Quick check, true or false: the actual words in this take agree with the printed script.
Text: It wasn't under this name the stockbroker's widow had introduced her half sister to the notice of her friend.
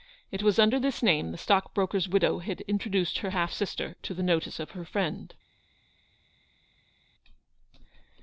false